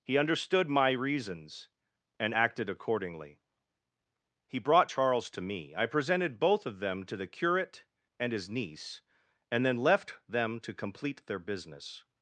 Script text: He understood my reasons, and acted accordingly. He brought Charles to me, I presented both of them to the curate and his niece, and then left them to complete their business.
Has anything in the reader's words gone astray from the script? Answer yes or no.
no